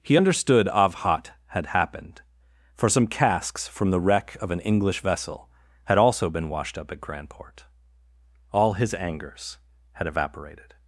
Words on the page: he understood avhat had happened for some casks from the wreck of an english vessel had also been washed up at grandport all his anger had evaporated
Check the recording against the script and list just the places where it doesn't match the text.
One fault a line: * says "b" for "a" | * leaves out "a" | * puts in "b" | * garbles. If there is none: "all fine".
* says "angers" for "anger"